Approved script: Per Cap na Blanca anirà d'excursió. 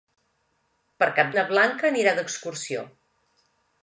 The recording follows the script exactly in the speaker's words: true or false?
true